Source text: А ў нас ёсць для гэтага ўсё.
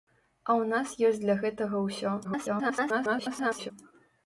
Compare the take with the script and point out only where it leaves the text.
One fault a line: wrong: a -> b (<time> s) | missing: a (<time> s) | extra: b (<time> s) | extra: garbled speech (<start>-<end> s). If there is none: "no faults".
extra: garbled speech (2.2-3.7 s)